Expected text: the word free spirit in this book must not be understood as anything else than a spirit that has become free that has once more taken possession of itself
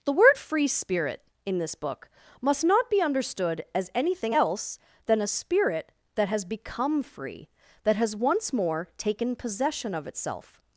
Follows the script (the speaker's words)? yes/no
yes